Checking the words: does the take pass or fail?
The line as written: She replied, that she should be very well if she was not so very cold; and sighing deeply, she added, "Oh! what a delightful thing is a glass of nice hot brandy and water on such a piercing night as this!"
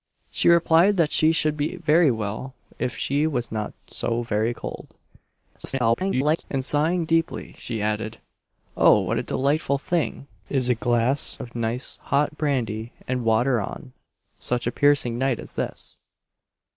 fail